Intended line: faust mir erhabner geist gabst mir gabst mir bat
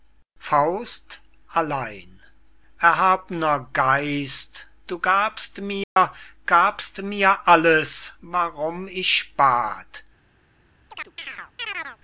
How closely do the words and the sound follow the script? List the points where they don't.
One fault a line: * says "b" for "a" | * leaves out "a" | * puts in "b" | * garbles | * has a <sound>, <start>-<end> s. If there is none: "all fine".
* says "allein" for "mir"
* puts in "du"
* has a dropout, 5.8-6.0 s
* puts in "alles warum ich"
* has a chirp, 10.9-12.0 s